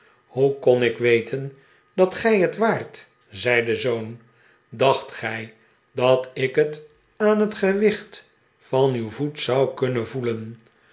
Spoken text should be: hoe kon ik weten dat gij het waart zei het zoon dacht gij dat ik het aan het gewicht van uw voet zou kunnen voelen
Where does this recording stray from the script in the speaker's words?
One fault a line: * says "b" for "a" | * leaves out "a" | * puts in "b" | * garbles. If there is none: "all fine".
* says "de" for "het"